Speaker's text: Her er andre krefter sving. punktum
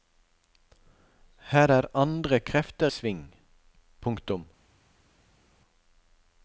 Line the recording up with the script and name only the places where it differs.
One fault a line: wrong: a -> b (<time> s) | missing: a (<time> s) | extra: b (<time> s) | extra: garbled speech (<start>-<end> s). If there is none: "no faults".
no faults